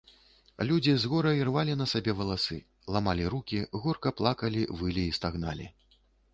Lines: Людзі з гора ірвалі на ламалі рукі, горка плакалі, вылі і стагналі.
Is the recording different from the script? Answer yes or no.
yes